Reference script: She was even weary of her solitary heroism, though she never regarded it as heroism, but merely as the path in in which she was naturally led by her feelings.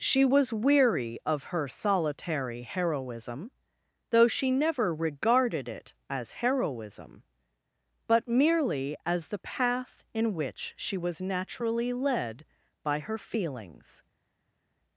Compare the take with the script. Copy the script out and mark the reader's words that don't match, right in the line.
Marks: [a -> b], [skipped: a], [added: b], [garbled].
She was [skipped: even] weary of her solitary heroism, though she never regarded it as heroism, but merely as the path in [skipped: in] which she was naturally led by her feelings.